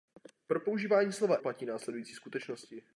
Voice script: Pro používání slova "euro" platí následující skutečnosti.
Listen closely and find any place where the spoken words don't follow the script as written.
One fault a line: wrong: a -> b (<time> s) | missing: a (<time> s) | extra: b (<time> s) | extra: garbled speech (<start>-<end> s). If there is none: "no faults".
missing: euro (1.4 s)